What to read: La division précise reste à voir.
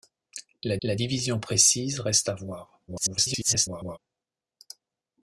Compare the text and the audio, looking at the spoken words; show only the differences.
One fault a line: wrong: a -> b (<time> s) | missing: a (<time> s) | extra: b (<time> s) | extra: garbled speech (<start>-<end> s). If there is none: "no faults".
extra: la (0.8 s)
extra: garbled speech (2.9-4.0 s)